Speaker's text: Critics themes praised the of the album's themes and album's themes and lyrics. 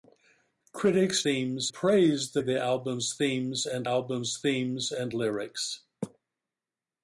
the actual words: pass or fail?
pass